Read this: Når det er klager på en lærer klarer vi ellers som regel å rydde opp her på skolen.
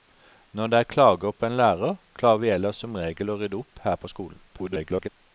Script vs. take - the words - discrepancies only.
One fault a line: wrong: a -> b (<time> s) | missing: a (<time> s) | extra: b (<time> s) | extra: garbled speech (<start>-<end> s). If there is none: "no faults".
extra: garbled speech (4.5-5.1 s)